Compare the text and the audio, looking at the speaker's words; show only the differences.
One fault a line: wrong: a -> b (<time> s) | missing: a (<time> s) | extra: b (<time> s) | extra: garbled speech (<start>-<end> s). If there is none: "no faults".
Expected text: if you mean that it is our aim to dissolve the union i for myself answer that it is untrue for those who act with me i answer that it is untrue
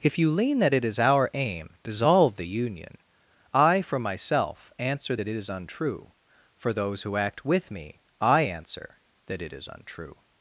wrong: mean -> lean (0.3 s)
missing: to (1.8 s)